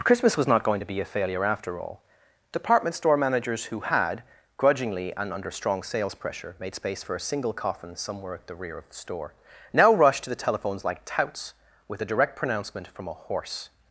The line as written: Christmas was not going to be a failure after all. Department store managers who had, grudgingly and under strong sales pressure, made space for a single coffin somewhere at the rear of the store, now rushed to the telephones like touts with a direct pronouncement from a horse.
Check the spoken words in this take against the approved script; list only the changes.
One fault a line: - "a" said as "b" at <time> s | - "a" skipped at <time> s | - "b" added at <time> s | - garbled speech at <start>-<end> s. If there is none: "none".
none